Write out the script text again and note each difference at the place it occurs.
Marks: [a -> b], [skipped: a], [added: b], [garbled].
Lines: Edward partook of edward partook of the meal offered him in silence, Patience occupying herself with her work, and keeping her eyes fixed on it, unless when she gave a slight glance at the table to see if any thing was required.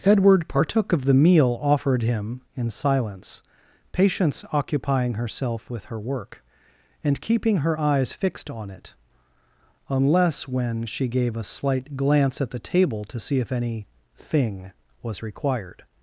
Edward partook of [skipped: edward partook of] the meal offered him in silence, Patience occupying herself with her work, and keeping her eyes fixed on it, unless when she gave a slight glance at the table to see if any thing was required.